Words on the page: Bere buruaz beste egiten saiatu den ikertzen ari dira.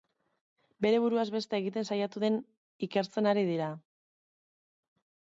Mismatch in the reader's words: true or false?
false